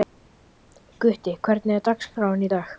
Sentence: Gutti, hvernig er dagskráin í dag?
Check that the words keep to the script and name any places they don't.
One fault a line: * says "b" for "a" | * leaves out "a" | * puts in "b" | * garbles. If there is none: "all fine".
all fine